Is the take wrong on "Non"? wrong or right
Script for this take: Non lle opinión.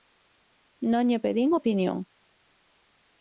right